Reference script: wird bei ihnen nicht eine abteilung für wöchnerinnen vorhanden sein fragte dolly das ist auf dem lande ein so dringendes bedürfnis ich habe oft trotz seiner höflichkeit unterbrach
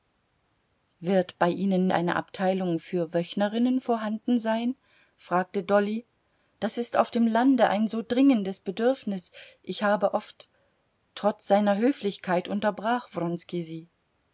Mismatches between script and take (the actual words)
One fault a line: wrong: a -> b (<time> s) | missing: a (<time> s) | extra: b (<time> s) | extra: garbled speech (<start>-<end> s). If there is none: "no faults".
missing: nicht (1.9 s)